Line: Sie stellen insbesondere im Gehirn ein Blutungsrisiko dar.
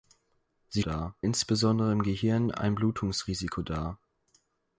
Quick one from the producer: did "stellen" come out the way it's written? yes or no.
no